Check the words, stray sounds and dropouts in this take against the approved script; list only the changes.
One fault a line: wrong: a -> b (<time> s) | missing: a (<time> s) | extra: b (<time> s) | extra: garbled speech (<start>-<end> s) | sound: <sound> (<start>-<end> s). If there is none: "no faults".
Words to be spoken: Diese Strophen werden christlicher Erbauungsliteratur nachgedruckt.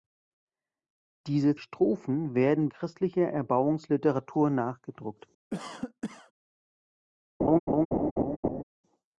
sound: cough (5.5-6.3 s)
sound: laugh (7.4-8.6 s)